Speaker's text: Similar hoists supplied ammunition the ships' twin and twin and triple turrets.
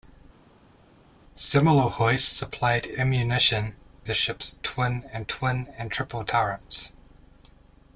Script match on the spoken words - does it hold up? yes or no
yes